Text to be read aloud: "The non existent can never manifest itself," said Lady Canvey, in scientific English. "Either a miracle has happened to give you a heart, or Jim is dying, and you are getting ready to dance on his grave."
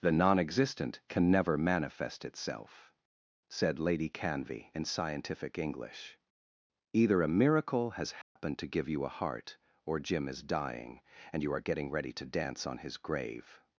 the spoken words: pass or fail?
pass